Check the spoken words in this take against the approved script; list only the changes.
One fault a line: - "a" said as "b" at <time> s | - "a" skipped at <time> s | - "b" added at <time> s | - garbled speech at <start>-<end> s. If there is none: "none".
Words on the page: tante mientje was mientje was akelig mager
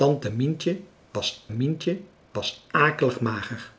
none